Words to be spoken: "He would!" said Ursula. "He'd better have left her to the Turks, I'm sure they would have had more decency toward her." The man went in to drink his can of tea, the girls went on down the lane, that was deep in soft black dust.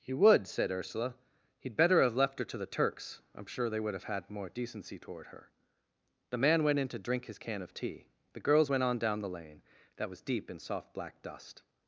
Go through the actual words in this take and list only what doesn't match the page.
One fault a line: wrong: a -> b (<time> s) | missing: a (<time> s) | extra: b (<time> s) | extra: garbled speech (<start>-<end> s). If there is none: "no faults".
no faults